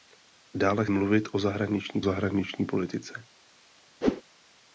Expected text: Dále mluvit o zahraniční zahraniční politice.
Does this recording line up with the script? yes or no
yes